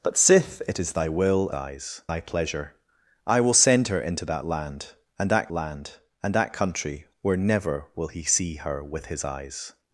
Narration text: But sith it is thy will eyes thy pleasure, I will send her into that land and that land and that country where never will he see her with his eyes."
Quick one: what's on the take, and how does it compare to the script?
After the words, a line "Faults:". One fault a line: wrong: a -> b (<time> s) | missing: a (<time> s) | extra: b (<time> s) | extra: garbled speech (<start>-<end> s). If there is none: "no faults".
But sith it is thy will eyes thy pleasure, I will send her into that land and that land and that country where never will he see her with his eyes."
Faults:
no faults